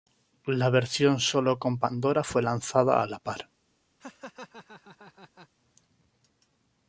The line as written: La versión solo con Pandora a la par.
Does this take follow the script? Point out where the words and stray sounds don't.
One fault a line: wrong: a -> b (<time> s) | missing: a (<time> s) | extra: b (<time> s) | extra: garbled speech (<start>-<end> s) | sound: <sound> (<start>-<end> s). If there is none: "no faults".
extra: fue lanzada (2.2 s)
sound: laugh (4.0-5.5 s)